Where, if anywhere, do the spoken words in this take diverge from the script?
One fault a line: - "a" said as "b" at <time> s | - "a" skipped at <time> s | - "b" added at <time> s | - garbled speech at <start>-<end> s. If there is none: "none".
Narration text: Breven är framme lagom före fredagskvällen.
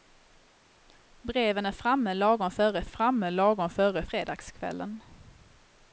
- "framme lagom före" added at 2.8 s